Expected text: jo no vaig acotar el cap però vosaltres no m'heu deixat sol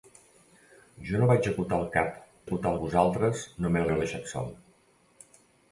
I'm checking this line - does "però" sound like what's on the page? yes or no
no